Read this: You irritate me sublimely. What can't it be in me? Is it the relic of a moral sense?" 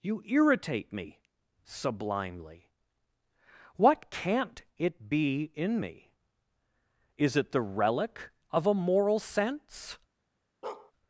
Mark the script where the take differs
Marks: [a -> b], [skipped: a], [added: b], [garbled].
You irritate me sublimely. What can't it be in me? Is it the relic of a moral sense?"